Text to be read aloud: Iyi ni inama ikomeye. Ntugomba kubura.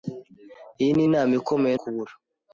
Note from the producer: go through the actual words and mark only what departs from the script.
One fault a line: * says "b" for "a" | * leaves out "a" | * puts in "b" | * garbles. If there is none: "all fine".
* leaves out "Ntugomba"